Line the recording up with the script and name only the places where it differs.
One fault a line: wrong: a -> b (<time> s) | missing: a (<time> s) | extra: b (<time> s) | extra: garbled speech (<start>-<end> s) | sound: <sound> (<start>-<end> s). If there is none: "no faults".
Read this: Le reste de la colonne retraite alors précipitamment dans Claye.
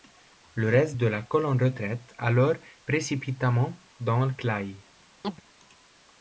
sound: chirp (5.2-5.4 s)